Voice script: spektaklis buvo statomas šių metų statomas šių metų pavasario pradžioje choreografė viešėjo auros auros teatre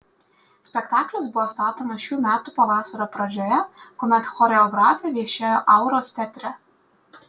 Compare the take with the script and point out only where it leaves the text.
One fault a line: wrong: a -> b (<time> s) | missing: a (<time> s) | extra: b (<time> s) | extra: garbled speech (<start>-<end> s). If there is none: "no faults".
missing: statomas šių metų (2.5 s)
extra: kuomet (4.0 s)
missing: auros (6.2 s)